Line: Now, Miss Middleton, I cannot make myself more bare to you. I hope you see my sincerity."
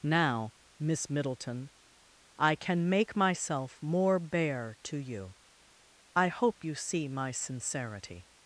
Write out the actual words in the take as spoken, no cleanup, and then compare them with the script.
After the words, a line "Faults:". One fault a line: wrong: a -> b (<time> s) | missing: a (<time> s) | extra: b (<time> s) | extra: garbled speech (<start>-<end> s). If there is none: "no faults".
Now, Miss Middleton, I can make myself more bare to you. I hope you see my sincerity."
Faults:
wrong: cannot -> can (2.5 s)